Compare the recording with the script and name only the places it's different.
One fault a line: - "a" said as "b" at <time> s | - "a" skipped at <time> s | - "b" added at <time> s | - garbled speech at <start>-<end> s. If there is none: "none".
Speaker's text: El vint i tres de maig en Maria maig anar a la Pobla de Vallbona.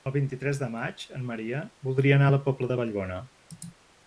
- "maig" said as "voldria" at 1.9 s